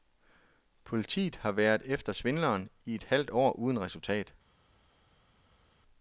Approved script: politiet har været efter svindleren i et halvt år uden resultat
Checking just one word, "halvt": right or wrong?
right